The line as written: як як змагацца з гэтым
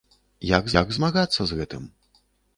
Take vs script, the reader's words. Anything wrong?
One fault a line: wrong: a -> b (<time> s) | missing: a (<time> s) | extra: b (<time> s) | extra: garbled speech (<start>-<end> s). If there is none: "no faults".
no faults